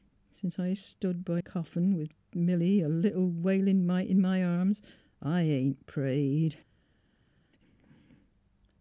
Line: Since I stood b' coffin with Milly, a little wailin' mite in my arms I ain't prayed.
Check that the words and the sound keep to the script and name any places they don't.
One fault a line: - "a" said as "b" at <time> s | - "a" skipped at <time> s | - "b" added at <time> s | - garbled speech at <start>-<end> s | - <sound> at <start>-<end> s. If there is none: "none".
none